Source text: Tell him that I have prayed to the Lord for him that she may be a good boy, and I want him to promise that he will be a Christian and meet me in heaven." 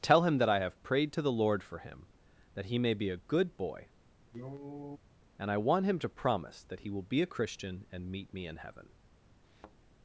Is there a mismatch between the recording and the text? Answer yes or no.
yes